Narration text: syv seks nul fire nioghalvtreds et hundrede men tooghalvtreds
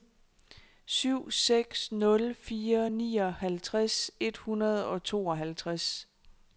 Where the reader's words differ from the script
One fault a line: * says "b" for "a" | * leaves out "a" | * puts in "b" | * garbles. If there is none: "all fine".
* says "og" for "men"